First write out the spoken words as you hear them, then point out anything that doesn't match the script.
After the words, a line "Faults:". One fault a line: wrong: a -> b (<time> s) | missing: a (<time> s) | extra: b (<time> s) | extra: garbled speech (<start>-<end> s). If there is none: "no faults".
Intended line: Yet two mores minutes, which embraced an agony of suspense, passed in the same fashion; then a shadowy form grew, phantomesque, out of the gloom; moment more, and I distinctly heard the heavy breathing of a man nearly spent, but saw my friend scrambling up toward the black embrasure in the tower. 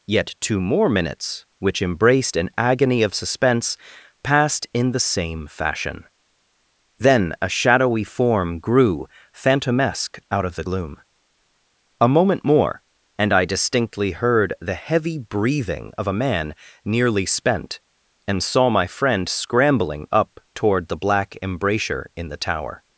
Yet two more minutes, which embraced an agony of suspense, passed in the same fashion; then a shadowy form grew, phantomesque, out of the gloom; a moment more, and I distinctly heard the heavy breathing of a man nearly spent, and saw my friend scrambling up toward the black embrasure in the tower.
Faults:
wrong: mores -> more (0.6 s)
extra: a (12.0 s)
wrong: but -> and (18.3 s)